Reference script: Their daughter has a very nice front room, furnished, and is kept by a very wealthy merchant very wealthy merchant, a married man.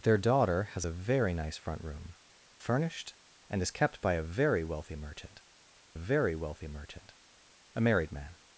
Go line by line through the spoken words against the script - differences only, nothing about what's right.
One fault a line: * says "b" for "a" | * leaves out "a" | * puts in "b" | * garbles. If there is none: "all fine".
all fine